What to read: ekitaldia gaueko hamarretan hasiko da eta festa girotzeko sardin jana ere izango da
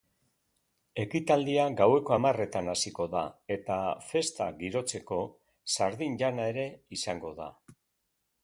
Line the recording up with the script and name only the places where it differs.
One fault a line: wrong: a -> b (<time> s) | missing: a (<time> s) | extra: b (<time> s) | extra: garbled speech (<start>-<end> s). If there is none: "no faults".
no faults